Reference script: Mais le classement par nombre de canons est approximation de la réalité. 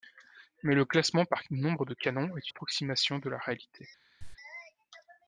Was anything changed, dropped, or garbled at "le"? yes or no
no